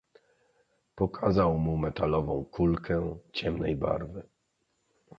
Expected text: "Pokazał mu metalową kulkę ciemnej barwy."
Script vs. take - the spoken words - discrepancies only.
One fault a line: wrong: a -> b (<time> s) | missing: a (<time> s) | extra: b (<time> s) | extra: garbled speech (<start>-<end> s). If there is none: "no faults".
no faults